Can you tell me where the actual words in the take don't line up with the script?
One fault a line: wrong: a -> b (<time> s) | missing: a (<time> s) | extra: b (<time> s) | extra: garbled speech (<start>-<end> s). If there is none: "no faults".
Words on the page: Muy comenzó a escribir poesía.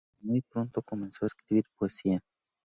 extra: pronto (0.4 s)